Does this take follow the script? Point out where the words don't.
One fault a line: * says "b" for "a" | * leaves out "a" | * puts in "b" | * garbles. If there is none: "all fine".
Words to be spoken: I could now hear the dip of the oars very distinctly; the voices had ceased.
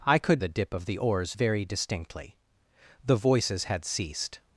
* leaves out "now hear"